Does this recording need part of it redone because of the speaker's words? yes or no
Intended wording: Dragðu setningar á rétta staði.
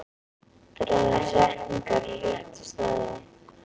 no